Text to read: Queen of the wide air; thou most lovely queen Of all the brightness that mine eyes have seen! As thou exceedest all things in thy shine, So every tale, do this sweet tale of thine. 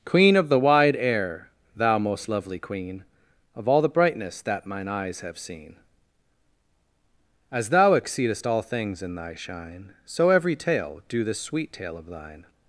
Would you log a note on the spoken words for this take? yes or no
no